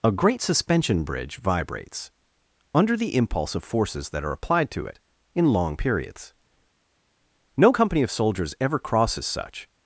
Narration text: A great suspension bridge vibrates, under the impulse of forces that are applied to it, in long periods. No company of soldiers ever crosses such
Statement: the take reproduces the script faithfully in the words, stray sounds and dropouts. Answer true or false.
true